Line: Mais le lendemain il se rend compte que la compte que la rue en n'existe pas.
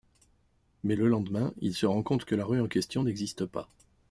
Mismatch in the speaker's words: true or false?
true